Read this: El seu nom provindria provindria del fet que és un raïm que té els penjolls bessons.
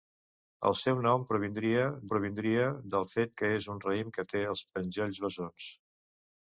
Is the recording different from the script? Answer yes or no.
no